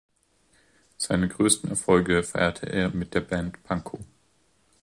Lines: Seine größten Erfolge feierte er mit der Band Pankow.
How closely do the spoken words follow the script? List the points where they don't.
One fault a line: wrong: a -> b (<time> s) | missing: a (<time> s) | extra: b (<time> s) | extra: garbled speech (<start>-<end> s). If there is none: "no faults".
no faults